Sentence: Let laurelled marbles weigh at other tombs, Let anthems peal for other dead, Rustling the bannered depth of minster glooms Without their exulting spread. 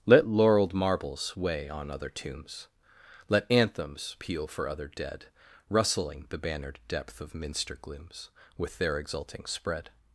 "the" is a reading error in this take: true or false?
false